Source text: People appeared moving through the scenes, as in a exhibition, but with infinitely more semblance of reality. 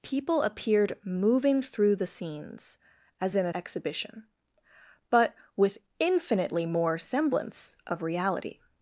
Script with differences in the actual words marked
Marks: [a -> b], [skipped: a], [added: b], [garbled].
People appeared moving through the scenes, as in a exhibition, but with infinitely more semblance of reality.